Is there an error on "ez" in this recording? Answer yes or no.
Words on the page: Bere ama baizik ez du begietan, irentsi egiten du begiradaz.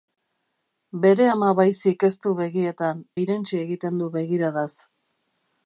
no